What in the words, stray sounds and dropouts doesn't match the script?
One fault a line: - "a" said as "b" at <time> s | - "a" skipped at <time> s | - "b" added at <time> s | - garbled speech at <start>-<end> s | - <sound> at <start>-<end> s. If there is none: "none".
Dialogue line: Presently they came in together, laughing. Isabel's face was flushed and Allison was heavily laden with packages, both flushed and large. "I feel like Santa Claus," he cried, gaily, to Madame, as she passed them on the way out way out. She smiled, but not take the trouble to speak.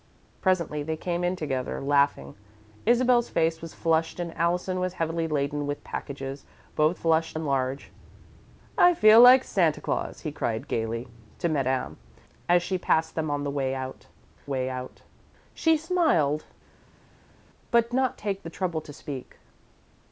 none